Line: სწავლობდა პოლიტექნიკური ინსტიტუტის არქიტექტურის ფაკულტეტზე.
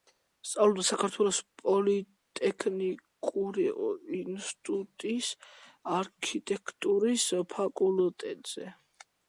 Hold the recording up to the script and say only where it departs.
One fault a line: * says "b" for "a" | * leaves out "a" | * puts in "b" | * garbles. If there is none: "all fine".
* puts in "საქართველოს"